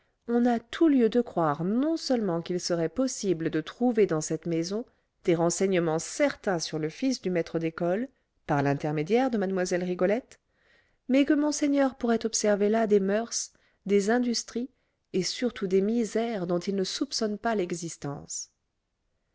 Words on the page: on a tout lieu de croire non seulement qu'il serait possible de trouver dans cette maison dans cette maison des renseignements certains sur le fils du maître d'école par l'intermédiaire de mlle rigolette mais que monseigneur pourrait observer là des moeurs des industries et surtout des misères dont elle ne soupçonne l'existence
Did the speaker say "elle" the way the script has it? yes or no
no